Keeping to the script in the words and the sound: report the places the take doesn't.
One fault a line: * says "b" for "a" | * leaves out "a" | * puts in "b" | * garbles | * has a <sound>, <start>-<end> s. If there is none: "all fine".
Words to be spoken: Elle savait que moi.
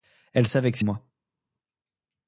all fine